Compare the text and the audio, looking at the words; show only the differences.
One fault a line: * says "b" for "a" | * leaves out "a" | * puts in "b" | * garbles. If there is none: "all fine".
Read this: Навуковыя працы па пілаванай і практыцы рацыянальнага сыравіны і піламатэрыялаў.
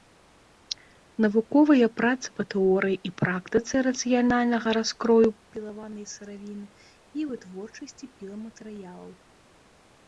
* says "тэорыі" for "пілаванай"
* puts in "раскрою пілаванай"
* puts in "вытворчасці"